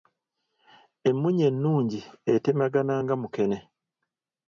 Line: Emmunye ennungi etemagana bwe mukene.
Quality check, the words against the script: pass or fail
fail